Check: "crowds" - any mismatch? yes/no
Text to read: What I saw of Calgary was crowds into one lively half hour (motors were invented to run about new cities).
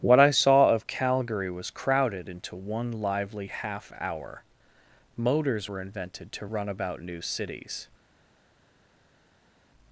yes